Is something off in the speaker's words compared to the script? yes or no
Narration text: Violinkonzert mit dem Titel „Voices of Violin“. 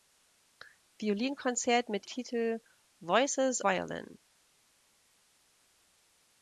yes